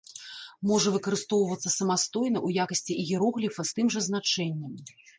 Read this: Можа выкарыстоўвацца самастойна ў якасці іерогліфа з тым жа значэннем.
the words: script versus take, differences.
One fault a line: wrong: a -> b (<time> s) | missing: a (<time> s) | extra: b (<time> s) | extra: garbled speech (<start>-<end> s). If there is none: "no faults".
no faults